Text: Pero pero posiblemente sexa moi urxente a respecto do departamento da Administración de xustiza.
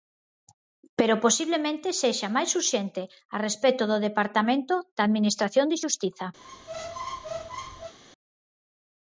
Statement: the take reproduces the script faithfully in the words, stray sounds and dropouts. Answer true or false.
false